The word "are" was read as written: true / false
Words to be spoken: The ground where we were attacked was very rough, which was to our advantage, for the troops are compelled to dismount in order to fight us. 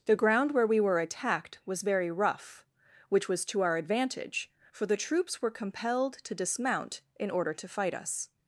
false